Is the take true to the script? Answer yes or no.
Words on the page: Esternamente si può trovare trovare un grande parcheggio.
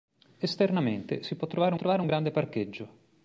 yes